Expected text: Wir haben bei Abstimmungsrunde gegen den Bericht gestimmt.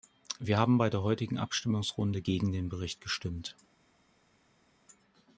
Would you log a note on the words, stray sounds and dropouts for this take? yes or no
yes